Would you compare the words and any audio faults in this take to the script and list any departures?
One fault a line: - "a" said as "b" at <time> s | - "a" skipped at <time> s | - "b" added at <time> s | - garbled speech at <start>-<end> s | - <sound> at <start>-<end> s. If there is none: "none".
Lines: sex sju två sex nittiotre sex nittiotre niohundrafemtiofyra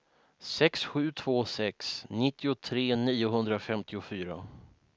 - "sex nittiotre" skipped at 3.0 s